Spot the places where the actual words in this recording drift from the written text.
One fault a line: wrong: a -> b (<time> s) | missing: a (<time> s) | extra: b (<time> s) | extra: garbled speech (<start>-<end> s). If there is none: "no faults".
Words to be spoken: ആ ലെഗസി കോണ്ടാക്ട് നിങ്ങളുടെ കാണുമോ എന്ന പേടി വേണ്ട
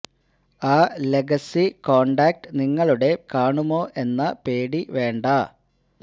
no faults